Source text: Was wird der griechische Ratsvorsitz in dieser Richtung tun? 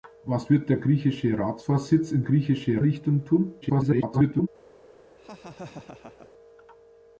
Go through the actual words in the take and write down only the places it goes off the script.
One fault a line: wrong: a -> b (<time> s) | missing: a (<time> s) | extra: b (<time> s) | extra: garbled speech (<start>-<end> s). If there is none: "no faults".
wrong: dieser -> griechische (2.2 s)
extra: garbled speech (3.6-4.5 s)